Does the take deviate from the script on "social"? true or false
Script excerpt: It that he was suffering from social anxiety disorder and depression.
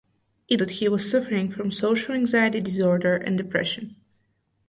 false